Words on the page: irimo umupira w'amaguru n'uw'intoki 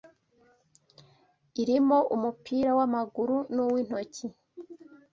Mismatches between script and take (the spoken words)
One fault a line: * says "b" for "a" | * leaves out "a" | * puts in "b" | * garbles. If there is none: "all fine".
all fine